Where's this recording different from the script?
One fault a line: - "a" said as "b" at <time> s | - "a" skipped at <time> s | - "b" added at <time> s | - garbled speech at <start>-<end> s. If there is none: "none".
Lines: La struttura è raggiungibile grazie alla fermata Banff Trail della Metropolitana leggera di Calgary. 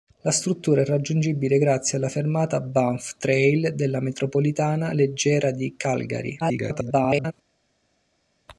- garbled speech at 6.4-7.3 s